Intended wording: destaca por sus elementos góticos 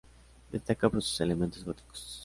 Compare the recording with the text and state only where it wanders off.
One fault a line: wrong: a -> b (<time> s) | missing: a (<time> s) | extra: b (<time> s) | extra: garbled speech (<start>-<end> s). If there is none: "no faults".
no faults